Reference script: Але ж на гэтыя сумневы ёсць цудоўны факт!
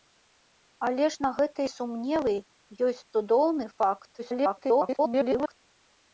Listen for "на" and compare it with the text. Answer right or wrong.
right